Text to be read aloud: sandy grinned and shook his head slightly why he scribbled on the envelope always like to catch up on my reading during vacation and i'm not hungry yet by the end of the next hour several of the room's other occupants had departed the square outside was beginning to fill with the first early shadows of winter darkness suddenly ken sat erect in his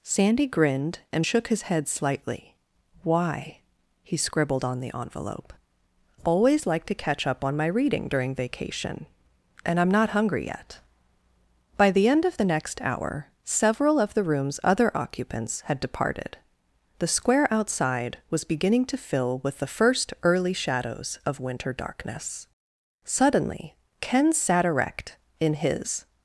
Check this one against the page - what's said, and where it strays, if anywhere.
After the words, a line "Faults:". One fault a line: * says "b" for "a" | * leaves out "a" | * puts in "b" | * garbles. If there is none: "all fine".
sandy grinned and shook his head slightly why he scribbled on the envelope always like to catch up on my reading during vacation and i'm not hungry yet by the end of the next hour several of the room's other occupants had departed the square outside was beginning to fill with the first early shadows of winter darkness suddenly ken sat erect in his
Faults:
all fine